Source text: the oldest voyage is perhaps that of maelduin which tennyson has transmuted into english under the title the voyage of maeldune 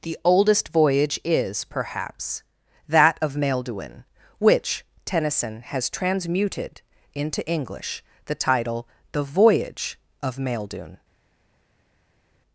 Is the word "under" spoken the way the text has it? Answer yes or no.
no